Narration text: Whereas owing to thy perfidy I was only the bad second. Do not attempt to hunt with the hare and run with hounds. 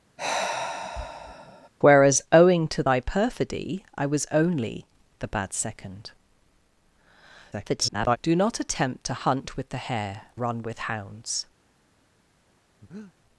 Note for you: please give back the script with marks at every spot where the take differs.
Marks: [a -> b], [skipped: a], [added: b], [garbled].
Whereas owing to thy perfidy I was only the bad second. [garbled] Do not attempt to hunt with the hare [skipped: and] run with hounds.